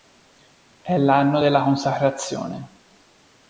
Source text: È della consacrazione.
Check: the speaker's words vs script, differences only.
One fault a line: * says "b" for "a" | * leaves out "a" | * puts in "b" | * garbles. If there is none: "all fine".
* puts in "l'anno"